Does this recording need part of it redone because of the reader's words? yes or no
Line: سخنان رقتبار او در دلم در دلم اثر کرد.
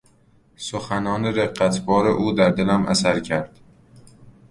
yes